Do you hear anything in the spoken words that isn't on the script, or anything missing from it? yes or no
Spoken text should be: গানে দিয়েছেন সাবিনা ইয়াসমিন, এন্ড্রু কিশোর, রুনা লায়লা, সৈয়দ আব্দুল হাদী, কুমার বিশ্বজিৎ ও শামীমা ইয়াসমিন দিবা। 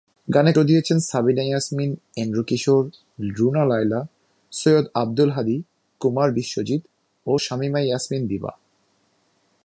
no